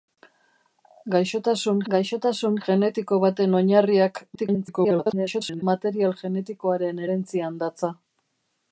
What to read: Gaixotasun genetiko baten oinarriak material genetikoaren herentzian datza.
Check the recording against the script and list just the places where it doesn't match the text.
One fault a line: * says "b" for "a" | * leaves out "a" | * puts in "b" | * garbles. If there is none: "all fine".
* puts in "gaixotasun"
* garbles